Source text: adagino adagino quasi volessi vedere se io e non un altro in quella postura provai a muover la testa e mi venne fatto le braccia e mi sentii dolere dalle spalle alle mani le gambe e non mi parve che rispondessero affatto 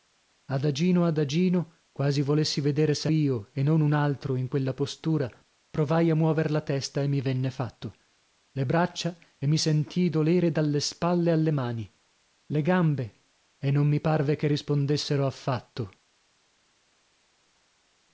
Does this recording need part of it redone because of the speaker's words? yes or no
no